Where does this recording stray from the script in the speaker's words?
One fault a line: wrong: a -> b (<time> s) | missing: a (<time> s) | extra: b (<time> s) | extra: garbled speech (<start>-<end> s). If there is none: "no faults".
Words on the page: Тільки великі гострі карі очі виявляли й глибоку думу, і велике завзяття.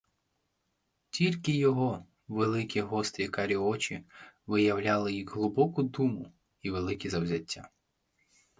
extra: його (1.5 s)